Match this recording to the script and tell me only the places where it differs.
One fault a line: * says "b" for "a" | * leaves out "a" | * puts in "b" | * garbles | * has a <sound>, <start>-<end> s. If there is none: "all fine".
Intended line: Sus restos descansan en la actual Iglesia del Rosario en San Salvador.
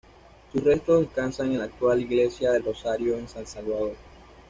all fine